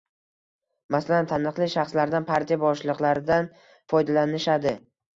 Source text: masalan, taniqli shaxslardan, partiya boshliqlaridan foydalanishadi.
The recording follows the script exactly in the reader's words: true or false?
true